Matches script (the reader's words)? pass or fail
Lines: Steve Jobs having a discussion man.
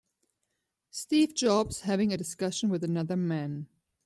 fail